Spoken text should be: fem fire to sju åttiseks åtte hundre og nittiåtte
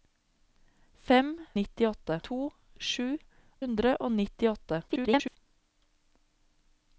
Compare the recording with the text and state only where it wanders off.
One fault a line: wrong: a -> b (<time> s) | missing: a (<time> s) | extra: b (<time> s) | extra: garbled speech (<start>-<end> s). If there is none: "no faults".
wrong: fire -> nittiåtte (1.6 s)
missing: åttiseks åtte (3.1 s)
extra: garbled speech (4.9-5.4 s)